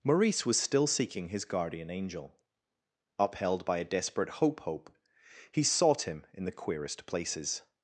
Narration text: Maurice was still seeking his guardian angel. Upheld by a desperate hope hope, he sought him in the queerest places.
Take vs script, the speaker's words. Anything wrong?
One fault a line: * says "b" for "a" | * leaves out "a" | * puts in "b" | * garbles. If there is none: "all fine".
all fine